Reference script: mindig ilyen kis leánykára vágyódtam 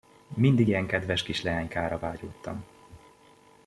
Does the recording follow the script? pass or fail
fail